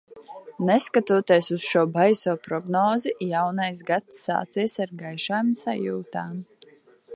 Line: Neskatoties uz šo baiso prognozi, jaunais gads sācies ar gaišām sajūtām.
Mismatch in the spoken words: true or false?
false